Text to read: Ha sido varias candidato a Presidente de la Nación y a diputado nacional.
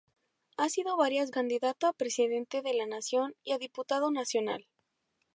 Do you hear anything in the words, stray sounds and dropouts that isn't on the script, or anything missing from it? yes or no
no